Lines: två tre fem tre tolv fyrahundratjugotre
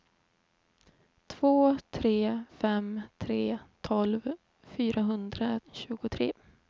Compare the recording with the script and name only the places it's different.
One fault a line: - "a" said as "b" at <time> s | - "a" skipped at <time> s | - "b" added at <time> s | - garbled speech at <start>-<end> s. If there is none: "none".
none